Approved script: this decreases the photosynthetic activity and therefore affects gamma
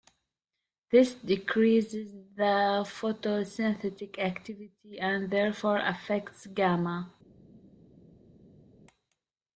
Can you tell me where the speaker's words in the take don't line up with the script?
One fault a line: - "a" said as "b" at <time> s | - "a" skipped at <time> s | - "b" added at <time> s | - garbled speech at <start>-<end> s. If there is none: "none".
none